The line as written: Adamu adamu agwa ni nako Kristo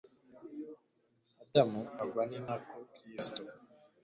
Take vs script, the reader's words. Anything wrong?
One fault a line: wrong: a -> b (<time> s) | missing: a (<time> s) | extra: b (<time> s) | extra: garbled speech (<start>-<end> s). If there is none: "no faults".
missing: adamu (1.8 s)